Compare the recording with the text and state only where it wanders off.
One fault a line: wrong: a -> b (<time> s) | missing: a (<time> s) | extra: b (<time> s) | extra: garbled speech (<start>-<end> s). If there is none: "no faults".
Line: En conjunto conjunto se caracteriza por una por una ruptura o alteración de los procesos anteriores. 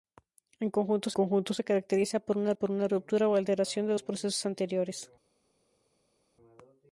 no faults